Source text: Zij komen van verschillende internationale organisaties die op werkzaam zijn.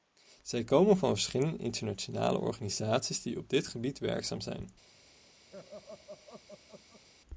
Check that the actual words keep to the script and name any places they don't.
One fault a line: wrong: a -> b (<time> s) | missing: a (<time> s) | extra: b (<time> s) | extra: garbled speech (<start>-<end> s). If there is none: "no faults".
extra: dit gebied (3.5 s)